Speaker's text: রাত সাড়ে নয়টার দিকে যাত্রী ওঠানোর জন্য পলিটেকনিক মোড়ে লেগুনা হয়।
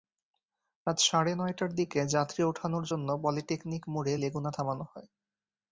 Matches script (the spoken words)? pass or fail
fail